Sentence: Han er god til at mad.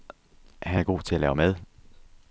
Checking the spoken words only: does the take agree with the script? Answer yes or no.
no